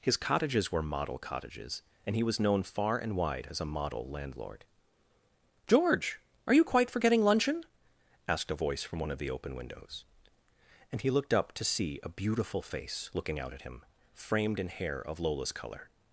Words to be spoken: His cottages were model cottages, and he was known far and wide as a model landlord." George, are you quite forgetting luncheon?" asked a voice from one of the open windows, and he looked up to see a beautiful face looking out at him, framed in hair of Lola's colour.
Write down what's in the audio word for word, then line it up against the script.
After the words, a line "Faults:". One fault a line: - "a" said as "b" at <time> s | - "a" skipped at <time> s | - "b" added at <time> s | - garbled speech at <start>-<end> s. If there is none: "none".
His cottages were model cottages, and he was known far and wide as a model landlord." George, are you quite forgetting luncheon?" asked a voice from one of the open windows, and he looked up to see a beautiful face looking out at him, framed in hair of Lola's colour.
Faults:
none